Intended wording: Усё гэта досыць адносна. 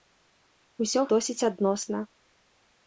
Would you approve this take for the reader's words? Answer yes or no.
no